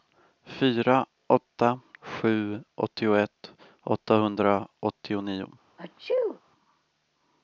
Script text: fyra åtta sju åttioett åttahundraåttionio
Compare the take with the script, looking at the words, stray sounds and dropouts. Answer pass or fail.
fail